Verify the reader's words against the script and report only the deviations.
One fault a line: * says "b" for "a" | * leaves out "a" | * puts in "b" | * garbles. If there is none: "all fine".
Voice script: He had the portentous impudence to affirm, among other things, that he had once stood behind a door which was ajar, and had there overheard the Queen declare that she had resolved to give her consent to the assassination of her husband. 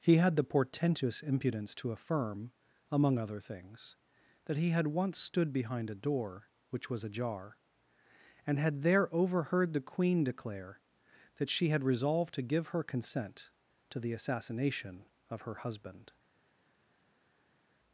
all fine